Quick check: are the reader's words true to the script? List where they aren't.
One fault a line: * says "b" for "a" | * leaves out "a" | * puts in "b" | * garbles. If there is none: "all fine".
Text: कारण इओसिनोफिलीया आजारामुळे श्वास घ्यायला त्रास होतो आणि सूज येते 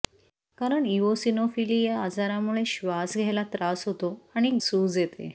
all fine